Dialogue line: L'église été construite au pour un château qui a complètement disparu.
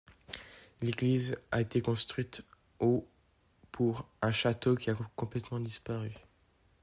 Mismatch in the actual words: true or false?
true